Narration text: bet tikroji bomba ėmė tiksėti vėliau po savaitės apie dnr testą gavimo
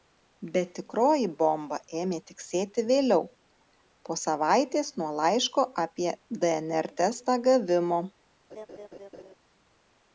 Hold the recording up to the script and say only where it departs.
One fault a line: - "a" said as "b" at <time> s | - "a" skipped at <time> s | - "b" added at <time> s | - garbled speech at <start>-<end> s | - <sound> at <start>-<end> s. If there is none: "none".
- "nuo laiško" added at 5.0 s
- laugh at 8.5-9.3 s